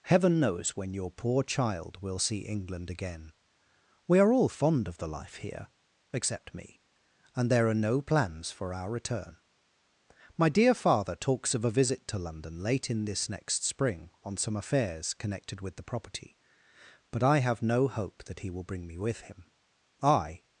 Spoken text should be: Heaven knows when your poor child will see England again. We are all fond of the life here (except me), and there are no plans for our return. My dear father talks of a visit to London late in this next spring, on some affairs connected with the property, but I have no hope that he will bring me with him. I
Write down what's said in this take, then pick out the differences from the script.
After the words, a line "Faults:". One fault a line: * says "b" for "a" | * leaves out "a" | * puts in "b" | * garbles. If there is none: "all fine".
Heaven knows when your poor child will see England again. We are all fond of the life here (except me), and there are no plans for our return. My dear father talks of a visit to London late in this next spring, on some affairs connected with the property, but I have no hope that he will bring me with him. I
Faults:
all fine